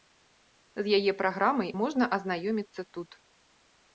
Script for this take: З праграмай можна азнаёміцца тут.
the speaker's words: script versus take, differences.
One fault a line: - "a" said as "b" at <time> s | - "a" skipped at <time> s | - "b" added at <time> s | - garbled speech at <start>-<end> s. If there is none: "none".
- "яе" added at 1.0 s